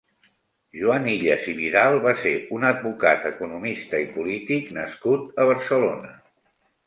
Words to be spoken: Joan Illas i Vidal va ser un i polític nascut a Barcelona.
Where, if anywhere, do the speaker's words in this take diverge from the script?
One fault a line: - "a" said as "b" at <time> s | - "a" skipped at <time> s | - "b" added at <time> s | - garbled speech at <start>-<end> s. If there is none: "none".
- "advocat economista" added at 2.7 s